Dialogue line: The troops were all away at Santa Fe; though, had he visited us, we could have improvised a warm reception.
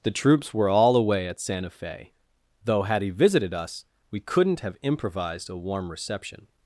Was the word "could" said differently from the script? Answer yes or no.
yes